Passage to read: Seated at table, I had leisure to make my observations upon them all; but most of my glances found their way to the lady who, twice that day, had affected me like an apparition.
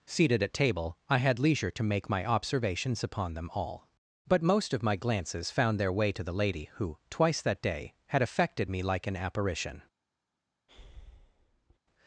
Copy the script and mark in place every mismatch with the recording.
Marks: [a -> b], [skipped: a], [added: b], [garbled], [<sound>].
Seated at table, I had leisure to make my observations upon them all; but most of my glances found their way to the lady who, twice that day, had affected me like an apparition. [breath]